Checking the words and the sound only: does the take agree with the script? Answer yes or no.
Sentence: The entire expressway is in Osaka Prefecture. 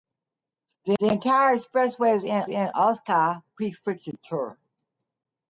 no